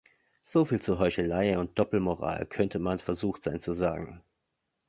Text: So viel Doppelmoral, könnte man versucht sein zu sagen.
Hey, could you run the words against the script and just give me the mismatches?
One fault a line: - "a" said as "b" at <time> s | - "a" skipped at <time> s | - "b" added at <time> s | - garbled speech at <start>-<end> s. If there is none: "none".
- "zu Heuchelei und" added at 0.8 s